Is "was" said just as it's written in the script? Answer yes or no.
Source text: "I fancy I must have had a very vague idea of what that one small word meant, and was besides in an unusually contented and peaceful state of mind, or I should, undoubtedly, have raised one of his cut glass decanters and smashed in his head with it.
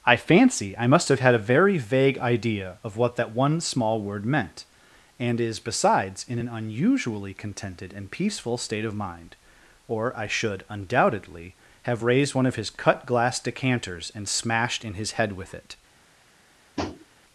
no